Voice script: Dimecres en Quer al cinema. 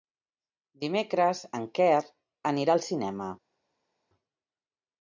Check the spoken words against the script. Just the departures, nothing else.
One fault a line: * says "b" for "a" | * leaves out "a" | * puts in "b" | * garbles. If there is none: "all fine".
* puts in "anirà"